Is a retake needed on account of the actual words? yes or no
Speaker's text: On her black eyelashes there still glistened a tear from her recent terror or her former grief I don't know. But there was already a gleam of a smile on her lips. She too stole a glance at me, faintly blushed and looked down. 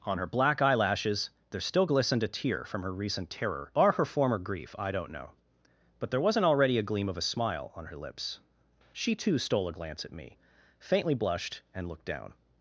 yes